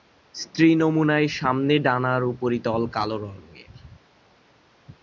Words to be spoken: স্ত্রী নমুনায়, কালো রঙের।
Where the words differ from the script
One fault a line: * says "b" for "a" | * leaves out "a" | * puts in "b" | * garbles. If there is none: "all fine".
* puts in "সামনের ডানার উপরিতল"